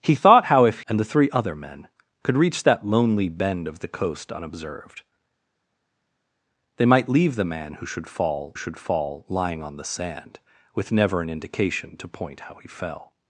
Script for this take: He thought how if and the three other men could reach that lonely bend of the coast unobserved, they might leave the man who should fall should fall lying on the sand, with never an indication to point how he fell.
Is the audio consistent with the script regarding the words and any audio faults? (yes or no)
yes